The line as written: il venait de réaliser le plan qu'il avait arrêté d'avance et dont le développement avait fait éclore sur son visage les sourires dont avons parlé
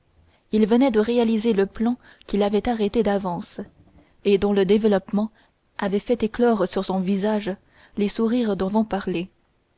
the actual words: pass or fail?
pass